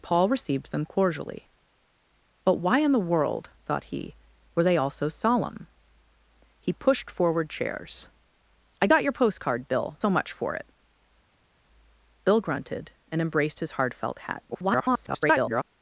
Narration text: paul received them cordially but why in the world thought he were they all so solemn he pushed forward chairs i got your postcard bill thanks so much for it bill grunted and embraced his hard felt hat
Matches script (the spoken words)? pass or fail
fail